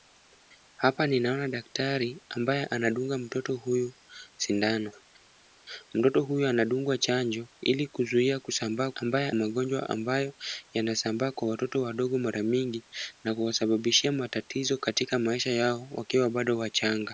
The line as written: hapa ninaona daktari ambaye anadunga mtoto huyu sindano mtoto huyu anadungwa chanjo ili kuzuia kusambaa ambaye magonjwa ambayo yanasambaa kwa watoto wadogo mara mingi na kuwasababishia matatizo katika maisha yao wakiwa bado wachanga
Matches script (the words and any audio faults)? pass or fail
pass